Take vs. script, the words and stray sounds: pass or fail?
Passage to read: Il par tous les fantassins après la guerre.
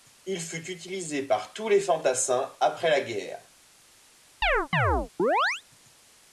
fail